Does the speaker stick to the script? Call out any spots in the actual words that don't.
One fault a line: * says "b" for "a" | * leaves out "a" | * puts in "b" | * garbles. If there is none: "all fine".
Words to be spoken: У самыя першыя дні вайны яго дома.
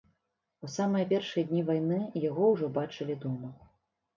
* puts in "ўжо бачылі"